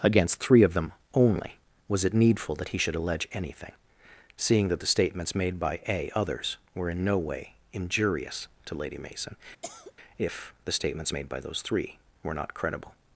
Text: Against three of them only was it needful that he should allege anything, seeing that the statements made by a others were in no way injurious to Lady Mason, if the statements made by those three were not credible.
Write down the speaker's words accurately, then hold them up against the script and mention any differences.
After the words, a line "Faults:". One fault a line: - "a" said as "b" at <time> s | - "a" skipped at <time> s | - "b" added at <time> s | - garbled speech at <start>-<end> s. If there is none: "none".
Against three of them only was it needful that he should allege anything, seeing that the statements made by a others were in no way injurious to Lady Mason, if the statements made by those three were not credible.
Faults:
none